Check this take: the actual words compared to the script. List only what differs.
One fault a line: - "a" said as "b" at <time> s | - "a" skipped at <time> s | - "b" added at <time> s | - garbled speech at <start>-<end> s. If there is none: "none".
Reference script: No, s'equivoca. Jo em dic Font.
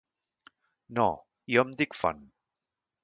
- "s'equivoca" skipped at 1.1 s